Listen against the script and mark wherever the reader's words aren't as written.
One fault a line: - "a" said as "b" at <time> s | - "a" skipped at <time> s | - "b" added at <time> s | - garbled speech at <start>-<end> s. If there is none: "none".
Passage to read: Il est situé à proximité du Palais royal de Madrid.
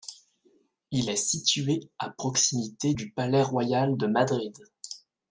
none